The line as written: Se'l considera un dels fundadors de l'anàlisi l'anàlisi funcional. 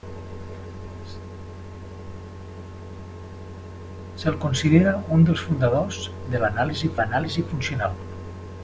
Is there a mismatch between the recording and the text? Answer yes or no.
no